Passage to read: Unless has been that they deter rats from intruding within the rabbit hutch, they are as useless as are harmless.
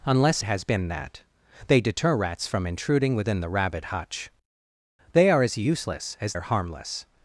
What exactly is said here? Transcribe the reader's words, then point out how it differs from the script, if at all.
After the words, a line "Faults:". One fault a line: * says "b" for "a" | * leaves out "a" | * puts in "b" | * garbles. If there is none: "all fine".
Unless has been that they deter rats from intruding within the rabbit hutch, they are as useless as are harmless.
Faults:
all fine